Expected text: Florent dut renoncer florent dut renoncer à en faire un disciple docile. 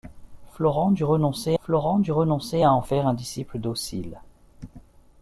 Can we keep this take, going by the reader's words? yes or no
yes